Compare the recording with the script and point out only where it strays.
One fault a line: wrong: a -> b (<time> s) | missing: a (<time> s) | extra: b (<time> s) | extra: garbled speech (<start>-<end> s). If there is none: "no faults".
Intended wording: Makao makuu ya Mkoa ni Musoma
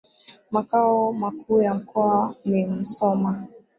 no faults